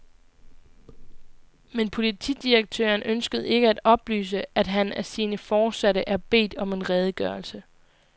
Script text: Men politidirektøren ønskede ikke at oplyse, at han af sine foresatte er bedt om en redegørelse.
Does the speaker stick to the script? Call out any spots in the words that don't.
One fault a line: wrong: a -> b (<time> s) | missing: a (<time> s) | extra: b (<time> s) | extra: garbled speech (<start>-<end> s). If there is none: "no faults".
no faults